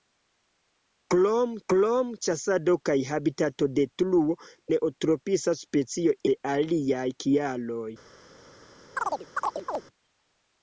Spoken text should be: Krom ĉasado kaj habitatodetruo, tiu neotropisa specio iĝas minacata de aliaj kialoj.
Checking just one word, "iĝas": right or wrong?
wrong